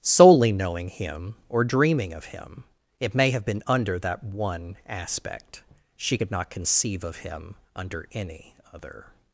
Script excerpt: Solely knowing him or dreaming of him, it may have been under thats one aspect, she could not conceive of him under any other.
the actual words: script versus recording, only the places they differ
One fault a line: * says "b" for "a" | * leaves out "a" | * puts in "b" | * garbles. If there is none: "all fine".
* says "that" for "thats"